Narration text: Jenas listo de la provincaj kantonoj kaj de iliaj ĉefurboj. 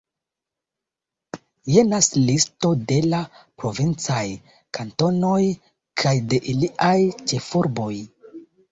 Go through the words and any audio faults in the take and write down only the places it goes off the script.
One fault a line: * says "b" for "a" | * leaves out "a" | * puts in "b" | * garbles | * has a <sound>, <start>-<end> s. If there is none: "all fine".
all fine